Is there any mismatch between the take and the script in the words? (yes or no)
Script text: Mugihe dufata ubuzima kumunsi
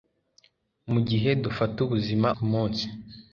no